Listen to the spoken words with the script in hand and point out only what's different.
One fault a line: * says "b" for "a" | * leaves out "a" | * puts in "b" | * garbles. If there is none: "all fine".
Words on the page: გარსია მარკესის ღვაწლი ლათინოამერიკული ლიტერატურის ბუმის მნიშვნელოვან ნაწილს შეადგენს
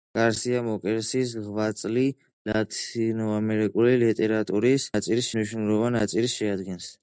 * says "ნაწილს" for "ბუმის"